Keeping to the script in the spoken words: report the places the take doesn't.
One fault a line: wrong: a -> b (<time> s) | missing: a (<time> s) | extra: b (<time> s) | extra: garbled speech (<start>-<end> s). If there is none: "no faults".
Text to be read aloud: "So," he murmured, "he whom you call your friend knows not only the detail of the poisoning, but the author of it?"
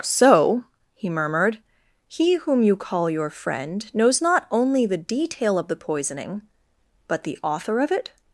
no faults